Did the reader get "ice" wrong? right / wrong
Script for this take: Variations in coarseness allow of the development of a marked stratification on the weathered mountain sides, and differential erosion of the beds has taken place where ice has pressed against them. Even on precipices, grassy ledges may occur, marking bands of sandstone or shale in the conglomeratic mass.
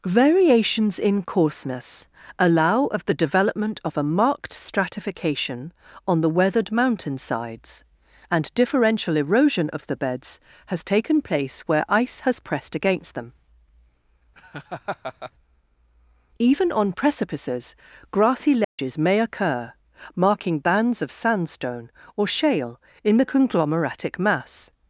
right